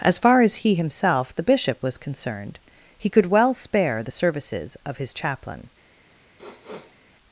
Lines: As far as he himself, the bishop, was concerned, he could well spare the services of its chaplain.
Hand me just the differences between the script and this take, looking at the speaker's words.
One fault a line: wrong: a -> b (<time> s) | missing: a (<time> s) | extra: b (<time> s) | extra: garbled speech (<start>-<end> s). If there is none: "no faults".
wrong: its -> his (5.0 s)